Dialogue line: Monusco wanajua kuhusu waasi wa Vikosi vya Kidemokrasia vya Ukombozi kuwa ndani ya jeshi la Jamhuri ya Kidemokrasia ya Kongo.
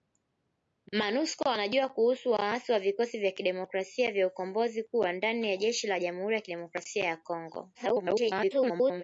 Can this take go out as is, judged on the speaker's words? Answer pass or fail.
fail